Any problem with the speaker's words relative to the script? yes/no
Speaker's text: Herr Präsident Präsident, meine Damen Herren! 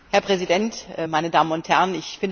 yes